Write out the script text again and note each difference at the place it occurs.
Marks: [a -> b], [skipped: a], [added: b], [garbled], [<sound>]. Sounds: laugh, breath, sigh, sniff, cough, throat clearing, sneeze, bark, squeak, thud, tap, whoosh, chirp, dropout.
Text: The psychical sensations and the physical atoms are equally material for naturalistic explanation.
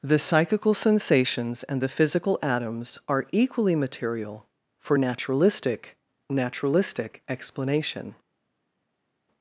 The psychical sensations and the physical atoms are equally material for naturalistic [added: naturalistic] explanation.